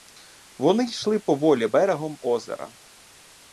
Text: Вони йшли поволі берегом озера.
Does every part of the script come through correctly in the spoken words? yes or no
yes